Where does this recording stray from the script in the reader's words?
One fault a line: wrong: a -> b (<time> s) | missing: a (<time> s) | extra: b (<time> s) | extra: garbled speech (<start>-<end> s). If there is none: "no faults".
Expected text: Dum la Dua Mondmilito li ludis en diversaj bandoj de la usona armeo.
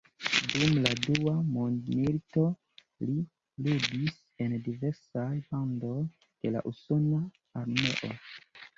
no faults